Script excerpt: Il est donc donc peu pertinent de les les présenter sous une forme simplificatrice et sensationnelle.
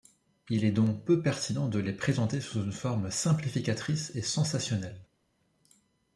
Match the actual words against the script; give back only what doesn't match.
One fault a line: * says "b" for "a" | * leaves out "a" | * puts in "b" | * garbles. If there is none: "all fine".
* leaves out "donc"
* leaves out "les"